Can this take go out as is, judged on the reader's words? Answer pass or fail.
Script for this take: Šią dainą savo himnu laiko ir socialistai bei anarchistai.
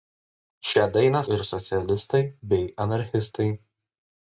fail